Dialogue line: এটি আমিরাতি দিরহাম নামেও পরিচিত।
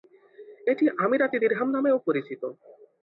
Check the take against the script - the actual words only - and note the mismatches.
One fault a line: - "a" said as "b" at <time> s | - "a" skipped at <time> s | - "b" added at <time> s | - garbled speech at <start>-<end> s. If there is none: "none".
none